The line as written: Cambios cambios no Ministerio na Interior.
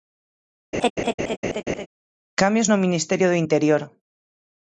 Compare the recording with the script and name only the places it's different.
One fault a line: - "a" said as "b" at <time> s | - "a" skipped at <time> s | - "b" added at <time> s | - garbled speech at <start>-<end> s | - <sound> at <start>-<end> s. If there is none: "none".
- laugh at 0.7-1.9 s
- "cambios" skipped at 2.7 s
- "na" said as "do" at 3.3 s